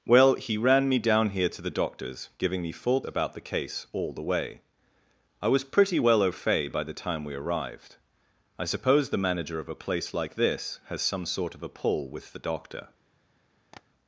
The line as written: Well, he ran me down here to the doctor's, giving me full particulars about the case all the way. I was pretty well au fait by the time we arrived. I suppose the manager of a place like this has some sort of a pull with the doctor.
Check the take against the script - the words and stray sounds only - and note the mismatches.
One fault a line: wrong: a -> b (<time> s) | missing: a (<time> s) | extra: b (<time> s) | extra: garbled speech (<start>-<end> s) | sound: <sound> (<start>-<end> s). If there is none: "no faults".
missing: particulars (3.0 s)
sound: tap (13.7-13.8 s)